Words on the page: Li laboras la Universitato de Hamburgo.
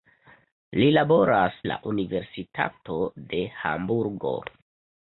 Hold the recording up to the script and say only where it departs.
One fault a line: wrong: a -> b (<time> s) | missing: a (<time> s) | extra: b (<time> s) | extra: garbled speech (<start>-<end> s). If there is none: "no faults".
no faults